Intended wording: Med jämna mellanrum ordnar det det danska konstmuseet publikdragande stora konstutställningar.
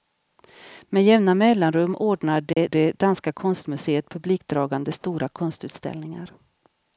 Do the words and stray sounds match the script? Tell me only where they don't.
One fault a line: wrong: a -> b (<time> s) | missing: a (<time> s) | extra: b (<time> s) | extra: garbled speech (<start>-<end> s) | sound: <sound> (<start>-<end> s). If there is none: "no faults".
sound: dropout (2.5-2.6 s)